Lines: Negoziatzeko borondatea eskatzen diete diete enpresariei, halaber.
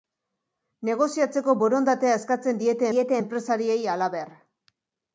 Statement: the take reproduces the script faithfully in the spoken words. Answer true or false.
true